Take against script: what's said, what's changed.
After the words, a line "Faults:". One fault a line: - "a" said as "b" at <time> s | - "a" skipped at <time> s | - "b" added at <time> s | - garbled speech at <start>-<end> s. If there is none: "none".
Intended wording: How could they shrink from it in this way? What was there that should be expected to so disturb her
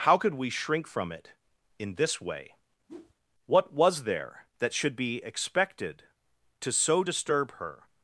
How could we shrink from it in this way? What was there that should be expected to so disturb her
Faults:
- "they" said as "we" at 0.4 s